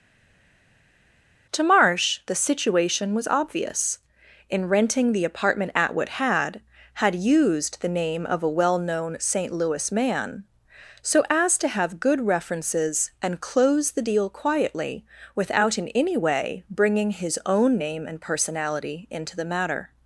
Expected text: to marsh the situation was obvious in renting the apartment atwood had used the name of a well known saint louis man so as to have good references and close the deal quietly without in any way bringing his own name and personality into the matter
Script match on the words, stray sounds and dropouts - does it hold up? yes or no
no